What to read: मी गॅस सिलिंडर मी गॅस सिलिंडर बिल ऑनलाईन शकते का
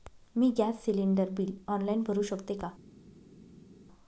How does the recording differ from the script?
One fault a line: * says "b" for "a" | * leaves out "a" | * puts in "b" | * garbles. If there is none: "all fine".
* leaves out "मी गॅस सिलिंडर"
* puts in "भरु"